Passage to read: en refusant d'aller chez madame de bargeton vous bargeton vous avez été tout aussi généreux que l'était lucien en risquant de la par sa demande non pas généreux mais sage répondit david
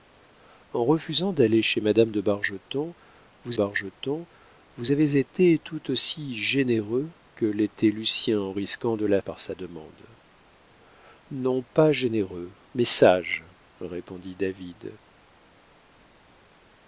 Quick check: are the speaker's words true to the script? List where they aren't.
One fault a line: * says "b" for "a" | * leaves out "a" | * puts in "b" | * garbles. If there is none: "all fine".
all fine